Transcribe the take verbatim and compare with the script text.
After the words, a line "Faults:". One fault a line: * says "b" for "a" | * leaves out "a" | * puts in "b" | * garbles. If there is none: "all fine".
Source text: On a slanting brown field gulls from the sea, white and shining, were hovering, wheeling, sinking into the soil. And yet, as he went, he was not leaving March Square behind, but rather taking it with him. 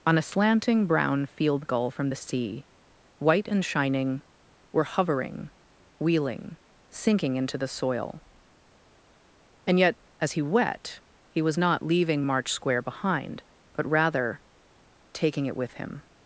On a slanting brown field gull from the sea, white and shining, were hovering, wheeling, sinking into the soil. And yet, as he wet, he was not leaving March Square behind, but rather taking it with him.
Faults:
* says "gull" for "gulls"
* says "wet" for "went"